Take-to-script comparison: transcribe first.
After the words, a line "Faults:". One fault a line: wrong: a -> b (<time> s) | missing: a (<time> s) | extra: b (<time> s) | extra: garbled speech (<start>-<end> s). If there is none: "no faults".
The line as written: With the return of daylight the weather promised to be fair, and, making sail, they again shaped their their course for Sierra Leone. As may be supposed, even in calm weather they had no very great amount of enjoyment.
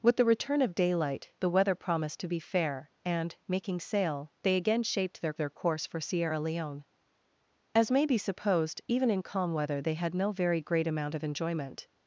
With the return of daylight the weather promised to be fair, and, making sail, they again shaped their their course for Sierra Leone. As may be supposed, even in calm weather they had no very great amount of enjoyment.
Faults:
no faults